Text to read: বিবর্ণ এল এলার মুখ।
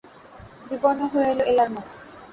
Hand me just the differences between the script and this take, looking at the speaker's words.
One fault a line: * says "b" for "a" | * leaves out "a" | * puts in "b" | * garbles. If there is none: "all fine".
* puts in "হয়ে"